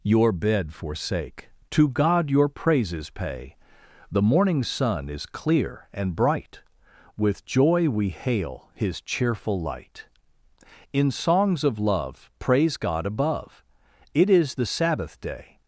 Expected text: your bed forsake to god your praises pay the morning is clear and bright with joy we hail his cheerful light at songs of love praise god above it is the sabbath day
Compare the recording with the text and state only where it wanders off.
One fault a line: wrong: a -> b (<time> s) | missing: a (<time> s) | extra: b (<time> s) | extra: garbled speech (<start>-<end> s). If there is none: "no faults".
extra: sun (4.6 s)
wrong: at -> in (10.9 s)